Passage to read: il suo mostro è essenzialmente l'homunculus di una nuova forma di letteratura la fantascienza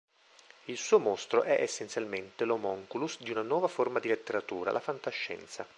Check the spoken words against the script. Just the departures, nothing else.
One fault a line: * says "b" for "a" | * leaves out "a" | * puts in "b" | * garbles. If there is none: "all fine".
all fine